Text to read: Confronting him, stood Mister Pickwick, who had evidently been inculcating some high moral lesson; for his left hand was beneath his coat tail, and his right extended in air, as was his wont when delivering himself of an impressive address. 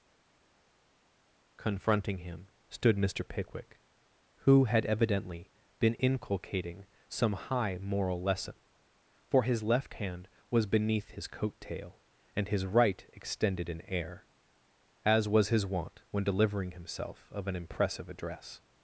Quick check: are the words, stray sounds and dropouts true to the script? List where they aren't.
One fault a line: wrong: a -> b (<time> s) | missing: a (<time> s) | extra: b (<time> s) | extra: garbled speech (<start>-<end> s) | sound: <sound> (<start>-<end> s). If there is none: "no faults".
no faults